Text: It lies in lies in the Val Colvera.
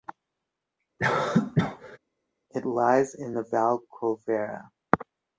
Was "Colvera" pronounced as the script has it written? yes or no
yes